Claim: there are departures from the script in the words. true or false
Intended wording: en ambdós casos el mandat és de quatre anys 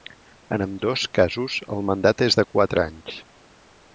false